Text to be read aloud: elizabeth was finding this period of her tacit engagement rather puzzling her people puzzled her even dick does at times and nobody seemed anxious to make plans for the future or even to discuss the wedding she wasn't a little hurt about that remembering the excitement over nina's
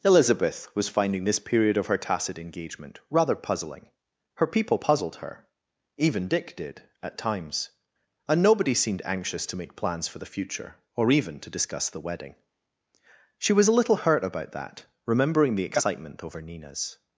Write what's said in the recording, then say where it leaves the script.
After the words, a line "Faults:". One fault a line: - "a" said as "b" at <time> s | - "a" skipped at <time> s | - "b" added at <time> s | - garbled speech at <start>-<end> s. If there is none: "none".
elizabeth was finding this period of her tacit engagement rather puzzling her people puzzled her even dick did at times and nobody seemed anxious to make plans for the future or even to discuss the wedding she was a little hurt about that remembering the excitement over nina's
Faults:
- "does" said as "did" at 6.5 s
- "wasn't" said as "was" at 13.5 s